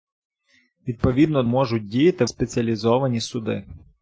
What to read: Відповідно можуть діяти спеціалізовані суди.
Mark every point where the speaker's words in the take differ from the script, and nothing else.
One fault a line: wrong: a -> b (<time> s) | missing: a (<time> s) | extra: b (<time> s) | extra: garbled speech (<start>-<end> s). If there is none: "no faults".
no faults